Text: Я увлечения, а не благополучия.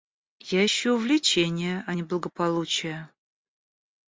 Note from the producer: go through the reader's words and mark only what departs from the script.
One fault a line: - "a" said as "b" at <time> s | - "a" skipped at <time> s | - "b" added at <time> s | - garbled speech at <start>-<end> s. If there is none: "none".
- "ищу" added at 0.6 s